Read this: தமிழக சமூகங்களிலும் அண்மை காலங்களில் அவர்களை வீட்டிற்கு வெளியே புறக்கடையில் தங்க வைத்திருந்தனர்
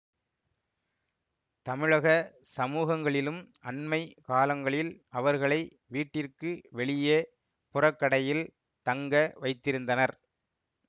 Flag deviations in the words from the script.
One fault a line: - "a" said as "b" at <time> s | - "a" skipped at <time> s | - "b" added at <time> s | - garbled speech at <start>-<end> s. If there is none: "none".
none